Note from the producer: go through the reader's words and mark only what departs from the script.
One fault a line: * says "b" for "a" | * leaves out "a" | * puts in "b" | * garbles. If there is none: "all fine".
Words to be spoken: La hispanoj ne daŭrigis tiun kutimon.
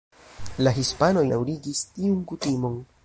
* leaves out "ne"